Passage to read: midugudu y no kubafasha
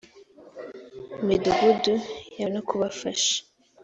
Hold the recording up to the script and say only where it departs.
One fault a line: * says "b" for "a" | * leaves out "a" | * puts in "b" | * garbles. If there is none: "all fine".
all fine